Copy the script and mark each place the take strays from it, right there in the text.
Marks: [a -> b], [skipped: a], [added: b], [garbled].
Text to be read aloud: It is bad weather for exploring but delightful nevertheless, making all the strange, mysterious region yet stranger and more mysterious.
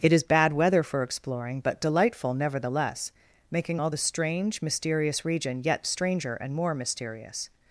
It is bad weather for exploring but delightful nevertheless, making all the strange, mysterious region yet stranger and more mysterious.